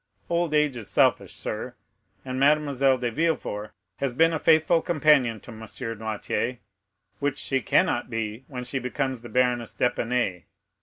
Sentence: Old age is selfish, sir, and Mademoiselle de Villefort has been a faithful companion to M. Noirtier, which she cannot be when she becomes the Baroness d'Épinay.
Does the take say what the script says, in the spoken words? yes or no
yes